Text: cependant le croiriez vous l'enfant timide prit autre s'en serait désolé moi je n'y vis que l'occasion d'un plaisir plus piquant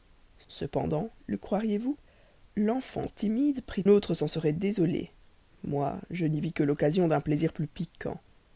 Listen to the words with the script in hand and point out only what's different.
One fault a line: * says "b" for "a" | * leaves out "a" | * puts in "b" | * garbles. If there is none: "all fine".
all fine